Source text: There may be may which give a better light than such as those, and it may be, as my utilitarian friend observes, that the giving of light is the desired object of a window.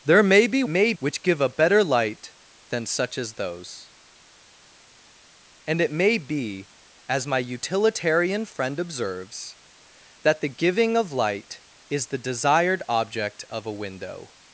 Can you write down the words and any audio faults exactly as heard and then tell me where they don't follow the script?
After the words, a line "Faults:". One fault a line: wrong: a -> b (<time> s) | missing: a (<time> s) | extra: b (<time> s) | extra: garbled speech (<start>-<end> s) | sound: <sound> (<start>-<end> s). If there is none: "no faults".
There may be may which give a better light than such as those, and it may be, as my utilitarian friend observes, that the giving of light is the desired object of a window.
Faults:
no faults